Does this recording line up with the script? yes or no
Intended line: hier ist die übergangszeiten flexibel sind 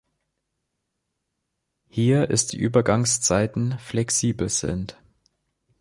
yes